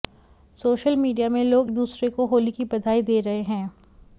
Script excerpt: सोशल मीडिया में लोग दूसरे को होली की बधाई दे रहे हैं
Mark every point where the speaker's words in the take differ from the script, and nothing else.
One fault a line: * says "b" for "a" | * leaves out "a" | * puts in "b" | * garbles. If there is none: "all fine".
all fine